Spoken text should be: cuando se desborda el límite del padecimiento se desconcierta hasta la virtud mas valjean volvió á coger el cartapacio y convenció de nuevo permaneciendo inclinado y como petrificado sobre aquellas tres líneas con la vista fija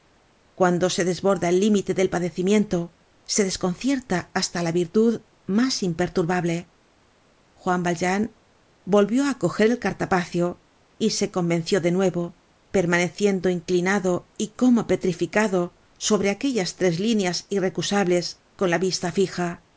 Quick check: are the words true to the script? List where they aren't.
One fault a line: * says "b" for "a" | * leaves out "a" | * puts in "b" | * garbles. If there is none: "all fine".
* puts in "imperturbable juan"
* puts in "se"
* puts in "irrecusables"